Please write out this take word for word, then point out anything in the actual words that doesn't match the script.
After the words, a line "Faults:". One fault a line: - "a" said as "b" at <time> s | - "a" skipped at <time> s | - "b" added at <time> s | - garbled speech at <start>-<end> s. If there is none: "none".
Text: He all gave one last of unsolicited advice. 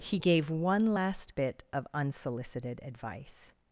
He gave one last bit of unsolicited advice.
Faults:
- "all" skipped at 0.2 s
- "bit" added at 1.3 s